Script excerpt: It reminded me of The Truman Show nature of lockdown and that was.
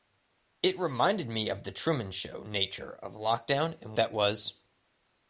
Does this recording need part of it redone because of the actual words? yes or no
no